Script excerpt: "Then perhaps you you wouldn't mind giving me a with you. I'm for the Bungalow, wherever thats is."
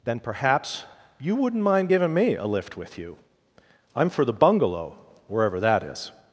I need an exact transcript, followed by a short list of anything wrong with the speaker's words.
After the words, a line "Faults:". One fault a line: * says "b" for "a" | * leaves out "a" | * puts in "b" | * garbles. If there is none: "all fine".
"Then perhaps you wouldn't mind giving me a lift with you. I'm for the Bungalow, wherever that is."
Faults:
* leaves out "you"
* puts in "lift"
* says "that" for "thats"